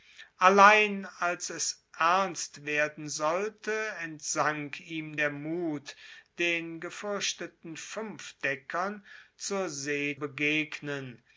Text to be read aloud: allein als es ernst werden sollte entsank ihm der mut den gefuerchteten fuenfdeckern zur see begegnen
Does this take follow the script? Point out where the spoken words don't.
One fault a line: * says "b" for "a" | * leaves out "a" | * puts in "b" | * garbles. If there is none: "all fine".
all fine